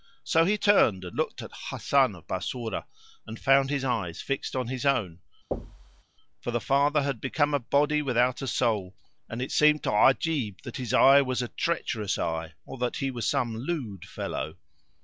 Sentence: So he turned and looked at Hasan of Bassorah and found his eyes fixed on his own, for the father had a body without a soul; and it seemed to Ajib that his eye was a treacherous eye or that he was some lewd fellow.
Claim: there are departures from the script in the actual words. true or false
true